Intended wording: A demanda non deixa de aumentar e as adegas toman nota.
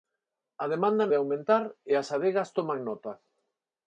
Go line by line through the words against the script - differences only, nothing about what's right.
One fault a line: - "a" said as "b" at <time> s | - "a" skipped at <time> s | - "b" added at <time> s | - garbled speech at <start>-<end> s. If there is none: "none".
- "non deixa" skipped at 1.0 s